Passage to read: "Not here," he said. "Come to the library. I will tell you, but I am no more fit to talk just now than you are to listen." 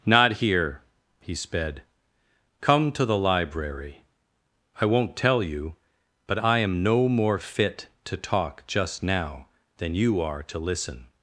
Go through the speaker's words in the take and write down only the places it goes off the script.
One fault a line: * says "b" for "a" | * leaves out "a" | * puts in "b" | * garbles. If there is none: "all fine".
* says "sped" for "said"
* says "won't" for "will"